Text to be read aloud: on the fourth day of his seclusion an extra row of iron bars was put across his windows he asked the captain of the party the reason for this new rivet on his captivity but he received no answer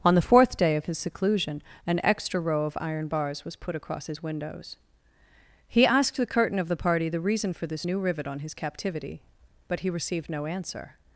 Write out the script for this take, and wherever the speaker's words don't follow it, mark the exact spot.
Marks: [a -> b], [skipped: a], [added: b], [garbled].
on the fourth day of his seclusion an extra row of iron bars was put across his windows he asked the [captain -> curtain] of the party the reason for this new rivet on his captivity but he received no answer